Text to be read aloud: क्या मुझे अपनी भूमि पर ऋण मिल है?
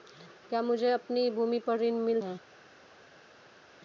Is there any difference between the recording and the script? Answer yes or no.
no